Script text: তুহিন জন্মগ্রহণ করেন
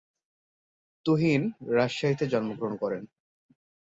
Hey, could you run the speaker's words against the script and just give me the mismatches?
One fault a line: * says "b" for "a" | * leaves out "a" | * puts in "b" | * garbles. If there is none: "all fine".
* puts in "রাজশাহীতে"